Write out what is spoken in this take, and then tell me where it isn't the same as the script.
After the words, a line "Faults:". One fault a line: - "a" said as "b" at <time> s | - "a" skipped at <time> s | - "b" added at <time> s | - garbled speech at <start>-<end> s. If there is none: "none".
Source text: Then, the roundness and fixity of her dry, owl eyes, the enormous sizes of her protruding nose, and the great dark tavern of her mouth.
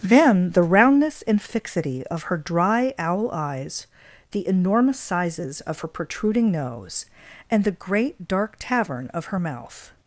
Then, the roundness and fixity of her dry, owl eyes, the enormous sizes of her protruding nose, and the great dark tavern of her mouth.
Faults:
none